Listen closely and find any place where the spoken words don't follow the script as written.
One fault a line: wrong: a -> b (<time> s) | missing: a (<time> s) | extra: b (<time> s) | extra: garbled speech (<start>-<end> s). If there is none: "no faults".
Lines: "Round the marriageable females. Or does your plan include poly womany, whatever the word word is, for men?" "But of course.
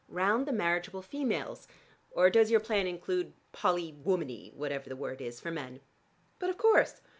missing: word (5.2 s)